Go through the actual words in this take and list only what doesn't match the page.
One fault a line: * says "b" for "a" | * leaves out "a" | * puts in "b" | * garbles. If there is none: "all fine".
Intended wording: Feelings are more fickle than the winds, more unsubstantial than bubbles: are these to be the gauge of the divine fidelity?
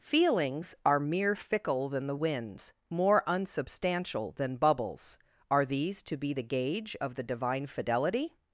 * says "mere" for "more"